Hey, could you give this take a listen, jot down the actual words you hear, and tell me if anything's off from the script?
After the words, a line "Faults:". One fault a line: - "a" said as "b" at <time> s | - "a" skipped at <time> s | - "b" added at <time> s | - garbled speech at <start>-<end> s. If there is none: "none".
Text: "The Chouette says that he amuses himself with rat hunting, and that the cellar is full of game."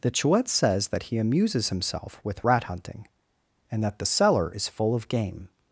"The Chouette says that he amuses himself with rat hunting, and that the cellar is full of game."
Faults:
none